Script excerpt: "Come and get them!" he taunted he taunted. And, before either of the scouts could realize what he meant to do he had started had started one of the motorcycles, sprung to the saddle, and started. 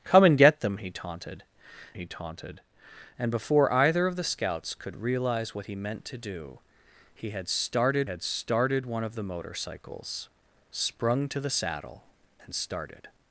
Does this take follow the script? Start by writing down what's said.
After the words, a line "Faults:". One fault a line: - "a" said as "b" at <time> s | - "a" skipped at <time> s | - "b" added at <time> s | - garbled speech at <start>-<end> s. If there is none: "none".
"Come and get them!" he taunted he taunted. And, before either of the scouts could realize what he meant to do he had started had started one of the motorcycles, sprung to the saddle, and started.
Faults:
none